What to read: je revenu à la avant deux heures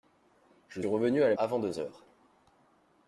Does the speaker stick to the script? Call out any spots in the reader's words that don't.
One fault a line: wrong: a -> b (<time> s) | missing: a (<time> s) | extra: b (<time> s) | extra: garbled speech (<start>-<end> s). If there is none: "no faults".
no faults